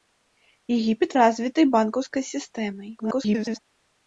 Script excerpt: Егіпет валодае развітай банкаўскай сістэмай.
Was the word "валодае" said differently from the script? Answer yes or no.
yes